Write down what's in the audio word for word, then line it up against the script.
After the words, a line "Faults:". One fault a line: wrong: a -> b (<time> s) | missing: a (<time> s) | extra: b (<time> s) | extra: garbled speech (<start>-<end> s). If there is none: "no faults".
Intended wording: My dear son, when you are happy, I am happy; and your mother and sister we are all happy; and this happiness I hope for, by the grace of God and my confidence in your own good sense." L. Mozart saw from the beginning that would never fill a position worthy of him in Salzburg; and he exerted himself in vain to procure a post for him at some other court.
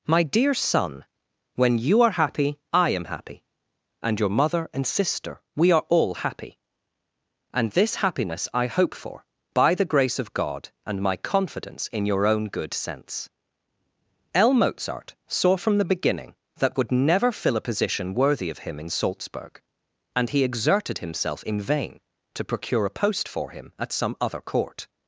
My dear son, when you are happy, I am happy; and your mother and sister we are all happy; and this happiness I hope for, by the grace of God and my confidence in your own good sense." L. Mozart saw from the beginning that would never fill a position worthy of him in Salzburg; and he exerted himself in vain to procure a post for him at some other court.
Faults:
no faults